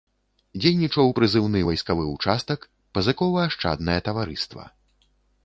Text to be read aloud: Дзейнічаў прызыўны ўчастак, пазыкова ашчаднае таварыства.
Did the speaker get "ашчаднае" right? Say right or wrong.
right